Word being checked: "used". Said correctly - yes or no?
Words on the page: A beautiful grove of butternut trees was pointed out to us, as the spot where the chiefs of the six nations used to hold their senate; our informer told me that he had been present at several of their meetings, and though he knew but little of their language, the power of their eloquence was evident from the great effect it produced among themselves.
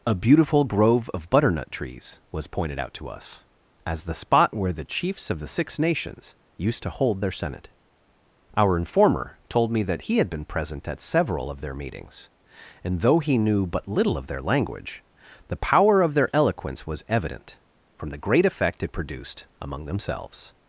yes